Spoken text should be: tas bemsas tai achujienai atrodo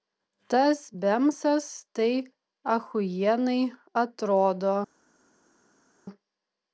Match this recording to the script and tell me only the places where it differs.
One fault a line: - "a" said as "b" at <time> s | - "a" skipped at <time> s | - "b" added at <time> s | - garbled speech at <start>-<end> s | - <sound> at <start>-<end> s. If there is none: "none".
none